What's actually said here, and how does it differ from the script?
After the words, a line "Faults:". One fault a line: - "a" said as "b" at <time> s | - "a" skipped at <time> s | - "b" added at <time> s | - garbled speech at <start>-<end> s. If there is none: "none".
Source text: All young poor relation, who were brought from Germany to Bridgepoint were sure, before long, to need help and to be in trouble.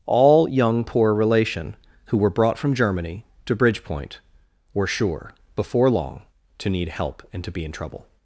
All young poor relation, who were brought from Germany to Bridgepoint were sure, before long, to need help and to be in trouble.
Faults:
none